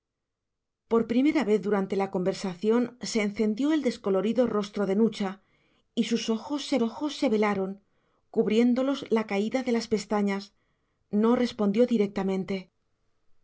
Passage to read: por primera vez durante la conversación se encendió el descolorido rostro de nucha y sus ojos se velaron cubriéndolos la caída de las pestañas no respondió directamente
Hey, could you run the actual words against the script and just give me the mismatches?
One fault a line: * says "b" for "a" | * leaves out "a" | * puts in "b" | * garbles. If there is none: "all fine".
* puts in "ojos se"